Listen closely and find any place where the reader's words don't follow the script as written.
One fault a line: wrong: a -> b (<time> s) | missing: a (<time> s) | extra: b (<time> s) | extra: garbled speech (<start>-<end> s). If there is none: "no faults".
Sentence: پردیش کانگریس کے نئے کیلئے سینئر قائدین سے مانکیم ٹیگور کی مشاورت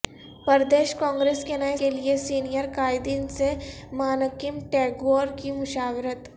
no faults